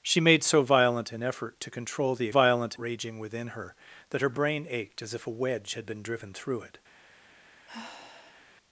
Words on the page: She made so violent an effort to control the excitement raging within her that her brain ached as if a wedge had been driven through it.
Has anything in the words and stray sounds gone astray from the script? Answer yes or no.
yes